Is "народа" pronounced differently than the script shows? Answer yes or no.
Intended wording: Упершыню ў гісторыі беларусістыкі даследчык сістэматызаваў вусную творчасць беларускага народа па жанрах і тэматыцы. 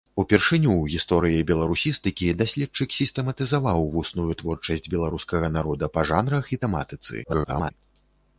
no